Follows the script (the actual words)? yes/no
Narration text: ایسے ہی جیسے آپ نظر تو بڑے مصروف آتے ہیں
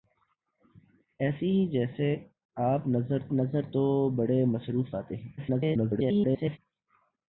no